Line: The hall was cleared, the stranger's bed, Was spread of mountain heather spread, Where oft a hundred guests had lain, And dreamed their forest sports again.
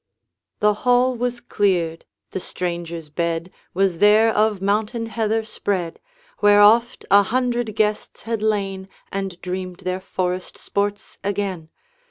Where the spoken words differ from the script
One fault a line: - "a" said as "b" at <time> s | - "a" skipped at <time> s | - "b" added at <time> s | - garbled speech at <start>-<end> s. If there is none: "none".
- "spread" said as "there" at 4.0 s